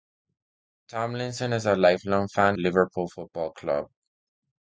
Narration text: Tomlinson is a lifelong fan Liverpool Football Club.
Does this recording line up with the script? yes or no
yes